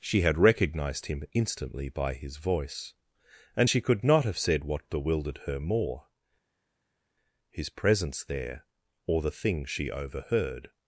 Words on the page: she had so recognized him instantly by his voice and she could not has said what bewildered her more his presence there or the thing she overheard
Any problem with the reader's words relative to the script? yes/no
yes